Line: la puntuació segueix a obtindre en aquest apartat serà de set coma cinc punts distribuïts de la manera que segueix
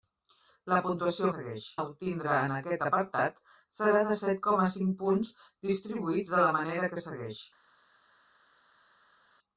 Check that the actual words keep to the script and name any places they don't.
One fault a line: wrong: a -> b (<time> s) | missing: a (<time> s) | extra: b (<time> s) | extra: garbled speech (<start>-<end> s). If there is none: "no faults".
no faults